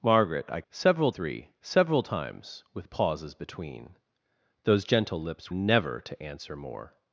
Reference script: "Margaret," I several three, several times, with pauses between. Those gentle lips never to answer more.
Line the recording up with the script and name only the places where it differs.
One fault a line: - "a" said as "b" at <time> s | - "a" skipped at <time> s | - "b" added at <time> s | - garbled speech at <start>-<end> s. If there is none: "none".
none